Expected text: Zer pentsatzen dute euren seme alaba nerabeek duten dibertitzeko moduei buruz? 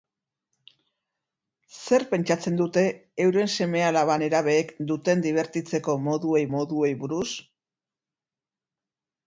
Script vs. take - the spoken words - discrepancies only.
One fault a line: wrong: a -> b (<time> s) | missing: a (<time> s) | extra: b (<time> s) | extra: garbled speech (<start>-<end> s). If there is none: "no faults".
extra: moduei (6.6 s)